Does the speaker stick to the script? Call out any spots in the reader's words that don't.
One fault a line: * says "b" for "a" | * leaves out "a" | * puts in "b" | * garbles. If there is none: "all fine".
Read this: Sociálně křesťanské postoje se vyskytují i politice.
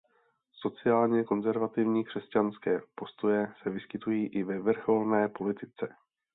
* puts in "konzervativní"
* puts in "ve vrcholné"